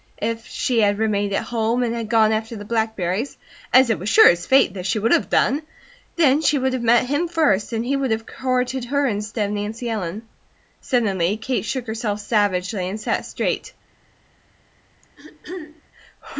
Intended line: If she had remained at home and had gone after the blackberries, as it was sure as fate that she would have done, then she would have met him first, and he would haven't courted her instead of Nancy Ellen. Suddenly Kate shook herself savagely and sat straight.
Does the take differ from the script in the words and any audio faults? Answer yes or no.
yes